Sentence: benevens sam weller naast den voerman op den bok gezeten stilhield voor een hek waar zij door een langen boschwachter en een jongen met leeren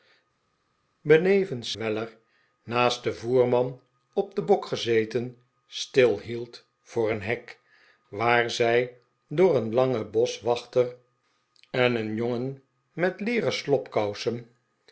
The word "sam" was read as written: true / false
false